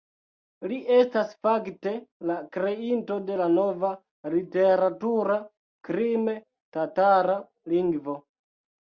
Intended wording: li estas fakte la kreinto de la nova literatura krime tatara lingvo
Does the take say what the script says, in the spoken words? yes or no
yes